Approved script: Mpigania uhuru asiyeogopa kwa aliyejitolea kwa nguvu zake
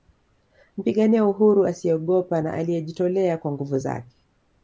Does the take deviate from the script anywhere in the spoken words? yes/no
yes